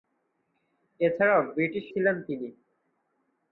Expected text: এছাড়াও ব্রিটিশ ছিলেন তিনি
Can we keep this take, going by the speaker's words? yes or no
yes